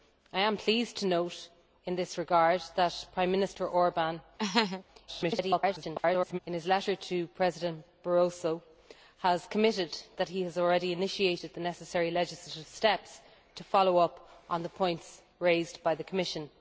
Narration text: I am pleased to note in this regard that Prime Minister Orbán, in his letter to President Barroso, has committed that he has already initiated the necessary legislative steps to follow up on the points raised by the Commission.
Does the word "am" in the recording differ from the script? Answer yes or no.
no